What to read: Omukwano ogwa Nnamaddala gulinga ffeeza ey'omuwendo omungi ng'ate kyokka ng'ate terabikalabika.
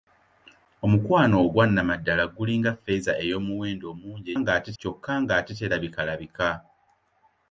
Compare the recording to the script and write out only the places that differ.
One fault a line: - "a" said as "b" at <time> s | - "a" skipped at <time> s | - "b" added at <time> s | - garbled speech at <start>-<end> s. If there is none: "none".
none